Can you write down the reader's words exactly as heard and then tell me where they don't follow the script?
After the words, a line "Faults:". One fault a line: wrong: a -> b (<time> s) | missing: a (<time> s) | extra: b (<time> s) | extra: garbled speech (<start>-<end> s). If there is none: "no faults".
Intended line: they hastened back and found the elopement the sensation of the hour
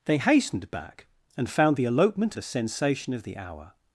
they hastened back and found the elopement the sensation of the hour
Faults:
no faults